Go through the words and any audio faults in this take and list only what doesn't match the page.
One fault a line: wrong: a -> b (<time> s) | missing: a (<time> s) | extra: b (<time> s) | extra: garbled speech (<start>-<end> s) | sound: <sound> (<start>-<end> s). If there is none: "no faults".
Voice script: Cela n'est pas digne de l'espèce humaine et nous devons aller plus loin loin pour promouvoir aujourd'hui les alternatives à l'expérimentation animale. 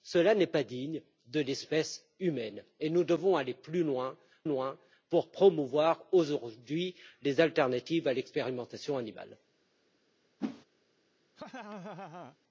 sound: whoosh (10.4-10.6 s)
sound: laugh (11.4-12.4 s)